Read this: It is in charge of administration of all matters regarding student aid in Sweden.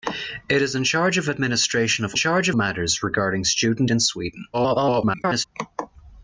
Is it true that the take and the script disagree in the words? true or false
true